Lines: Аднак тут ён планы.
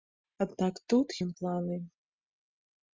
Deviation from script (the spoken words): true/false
false